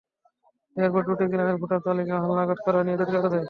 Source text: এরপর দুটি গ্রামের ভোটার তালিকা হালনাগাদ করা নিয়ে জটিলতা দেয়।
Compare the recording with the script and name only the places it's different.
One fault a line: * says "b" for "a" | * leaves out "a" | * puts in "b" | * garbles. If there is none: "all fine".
all fine